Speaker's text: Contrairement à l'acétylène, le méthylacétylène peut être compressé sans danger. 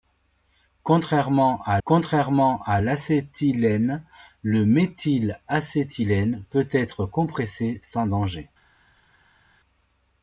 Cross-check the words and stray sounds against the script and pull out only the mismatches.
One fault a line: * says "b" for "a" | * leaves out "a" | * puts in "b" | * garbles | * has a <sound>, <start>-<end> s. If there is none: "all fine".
* puts in "contrairement à"